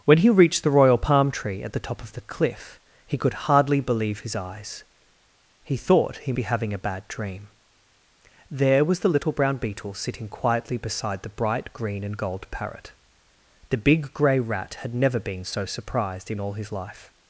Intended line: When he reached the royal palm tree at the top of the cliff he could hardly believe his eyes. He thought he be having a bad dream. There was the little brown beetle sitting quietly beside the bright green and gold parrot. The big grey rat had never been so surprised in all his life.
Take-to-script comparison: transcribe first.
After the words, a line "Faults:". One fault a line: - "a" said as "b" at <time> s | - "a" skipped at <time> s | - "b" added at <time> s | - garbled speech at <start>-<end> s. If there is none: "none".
When he reached the royal palm tree at the top of the cliff he could hardly believe his eyes. He thought he be having a bad dream. There was the little brown beetle sitting quietly beside the bright green and gold parrot. The big grey rat had never been so surprised in all his life.
Faults:
none